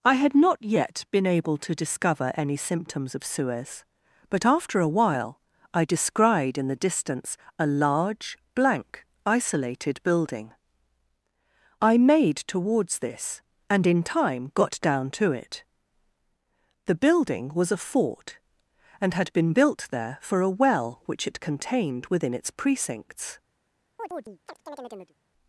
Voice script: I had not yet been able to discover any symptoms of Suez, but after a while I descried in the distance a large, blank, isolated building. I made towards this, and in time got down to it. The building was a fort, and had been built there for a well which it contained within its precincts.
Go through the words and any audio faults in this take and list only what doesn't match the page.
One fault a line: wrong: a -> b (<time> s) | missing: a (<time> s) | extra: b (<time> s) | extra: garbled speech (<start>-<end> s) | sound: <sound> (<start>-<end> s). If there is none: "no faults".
sound: chirp (24.0-25.1 s)